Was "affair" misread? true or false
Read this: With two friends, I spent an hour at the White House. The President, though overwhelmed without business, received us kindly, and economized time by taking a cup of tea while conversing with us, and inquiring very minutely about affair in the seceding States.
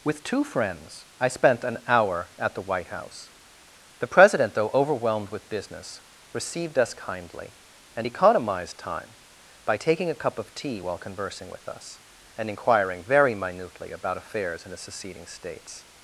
true